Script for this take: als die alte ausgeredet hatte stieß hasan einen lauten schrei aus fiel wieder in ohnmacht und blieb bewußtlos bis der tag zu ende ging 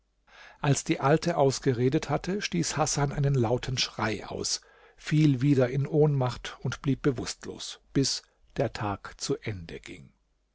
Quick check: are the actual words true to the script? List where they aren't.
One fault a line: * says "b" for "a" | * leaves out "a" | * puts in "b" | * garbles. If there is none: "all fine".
all fine